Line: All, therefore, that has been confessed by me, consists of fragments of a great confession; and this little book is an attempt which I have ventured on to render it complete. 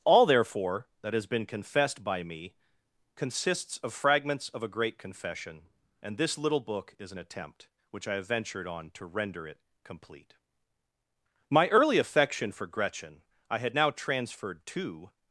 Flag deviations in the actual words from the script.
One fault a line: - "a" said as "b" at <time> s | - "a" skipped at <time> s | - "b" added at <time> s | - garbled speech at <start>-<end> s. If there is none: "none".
- "My early affection for Gretchen I had now transferred to" added at 11.5 s